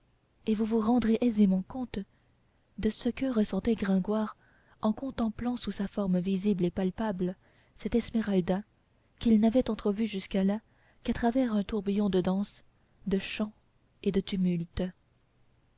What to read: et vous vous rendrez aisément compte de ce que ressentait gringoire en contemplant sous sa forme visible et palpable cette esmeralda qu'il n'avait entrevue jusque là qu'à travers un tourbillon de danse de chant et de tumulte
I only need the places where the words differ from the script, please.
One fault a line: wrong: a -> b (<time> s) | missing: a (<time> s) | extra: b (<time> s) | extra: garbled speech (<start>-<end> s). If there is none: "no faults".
no faults